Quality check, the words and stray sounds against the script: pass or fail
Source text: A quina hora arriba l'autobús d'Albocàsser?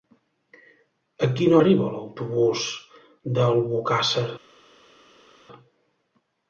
fail